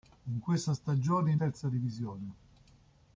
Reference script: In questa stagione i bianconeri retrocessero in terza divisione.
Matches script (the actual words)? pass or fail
fail